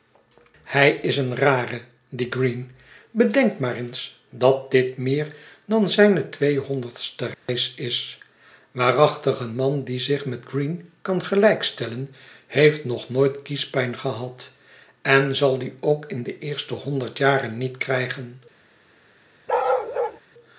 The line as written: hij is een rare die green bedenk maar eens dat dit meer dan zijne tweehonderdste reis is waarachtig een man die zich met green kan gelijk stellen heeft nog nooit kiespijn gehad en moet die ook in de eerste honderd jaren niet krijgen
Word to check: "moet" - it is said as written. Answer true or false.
false